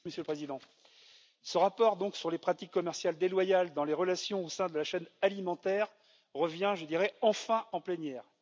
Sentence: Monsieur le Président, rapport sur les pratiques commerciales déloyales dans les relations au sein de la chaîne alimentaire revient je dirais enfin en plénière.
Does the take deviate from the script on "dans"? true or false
false